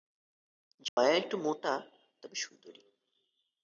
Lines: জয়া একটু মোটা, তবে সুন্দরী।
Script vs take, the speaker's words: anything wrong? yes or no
no